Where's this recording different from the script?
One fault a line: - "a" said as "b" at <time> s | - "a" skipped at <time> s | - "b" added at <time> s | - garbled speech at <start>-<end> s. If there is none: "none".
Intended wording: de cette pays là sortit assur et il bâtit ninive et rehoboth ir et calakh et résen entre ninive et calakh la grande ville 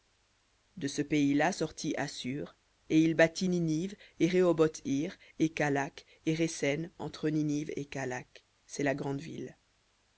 - "cette" said as "ce" at 0.9 s
- "c'est" added at 8.7 s